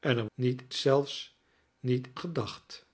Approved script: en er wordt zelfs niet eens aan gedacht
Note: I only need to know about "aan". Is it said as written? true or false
false